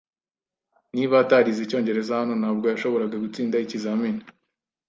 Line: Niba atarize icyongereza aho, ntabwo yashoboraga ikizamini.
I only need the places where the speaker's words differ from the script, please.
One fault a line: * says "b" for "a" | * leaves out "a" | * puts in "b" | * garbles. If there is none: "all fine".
* says "hano" for "aho"
* puts in "gutsinda"